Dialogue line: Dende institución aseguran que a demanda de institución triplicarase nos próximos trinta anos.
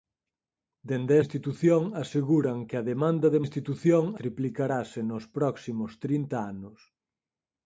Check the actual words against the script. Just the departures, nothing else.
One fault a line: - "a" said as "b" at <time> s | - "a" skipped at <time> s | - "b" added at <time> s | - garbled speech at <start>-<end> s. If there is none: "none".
none